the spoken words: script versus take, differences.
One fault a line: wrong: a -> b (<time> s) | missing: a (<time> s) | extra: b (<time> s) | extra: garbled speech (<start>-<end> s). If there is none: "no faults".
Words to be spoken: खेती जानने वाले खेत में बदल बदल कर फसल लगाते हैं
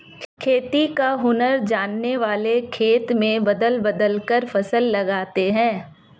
extra: का हुनर (0.9 s)